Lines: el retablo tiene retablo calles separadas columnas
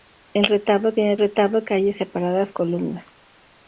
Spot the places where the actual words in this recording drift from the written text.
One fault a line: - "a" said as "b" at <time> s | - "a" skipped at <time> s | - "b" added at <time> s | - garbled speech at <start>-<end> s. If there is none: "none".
none